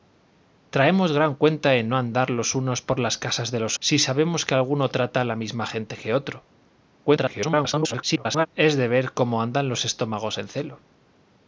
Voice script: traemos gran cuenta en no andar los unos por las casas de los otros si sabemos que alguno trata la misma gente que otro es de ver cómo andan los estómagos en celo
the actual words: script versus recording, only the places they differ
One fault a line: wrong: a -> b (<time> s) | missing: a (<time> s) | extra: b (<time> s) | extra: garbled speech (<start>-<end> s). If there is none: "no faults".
missing: otros (3.8 s)
extra: garbled speech (7.0-8.5 s)